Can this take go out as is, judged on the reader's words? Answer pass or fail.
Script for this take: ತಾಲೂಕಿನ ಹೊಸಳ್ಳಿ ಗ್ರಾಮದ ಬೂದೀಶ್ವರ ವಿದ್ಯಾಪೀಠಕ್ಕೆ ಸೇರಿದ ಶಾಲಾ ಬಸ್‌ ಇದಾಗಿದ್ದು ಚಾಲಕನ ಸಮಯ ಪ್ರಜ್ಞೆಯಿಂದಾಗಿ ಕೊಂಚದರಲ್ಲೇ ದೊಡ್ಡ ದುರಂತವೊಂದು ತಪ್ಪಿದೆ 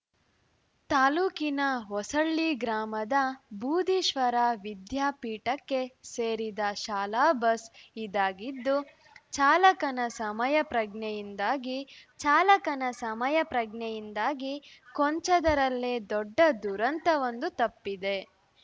fail